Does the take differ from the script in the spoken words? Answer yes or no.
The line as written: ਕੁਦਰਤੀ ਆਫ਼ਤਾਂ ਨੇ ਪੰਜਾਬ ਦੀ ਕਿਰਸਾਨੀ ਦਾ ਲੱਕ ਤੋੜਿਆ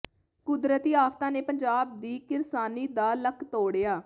no